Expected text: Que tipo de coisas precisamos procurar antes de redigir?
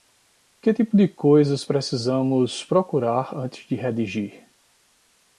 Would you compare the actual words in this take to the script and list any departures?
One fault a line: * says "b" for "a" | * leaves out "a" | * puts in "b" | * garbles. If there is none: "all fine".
all fine